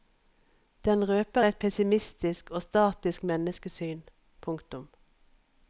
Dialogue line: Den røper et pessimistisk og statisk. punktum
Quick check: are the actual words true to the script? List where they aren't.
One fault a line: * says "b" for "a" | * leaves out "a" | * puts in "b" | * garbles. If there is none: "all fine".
* puts in "menneskesyn"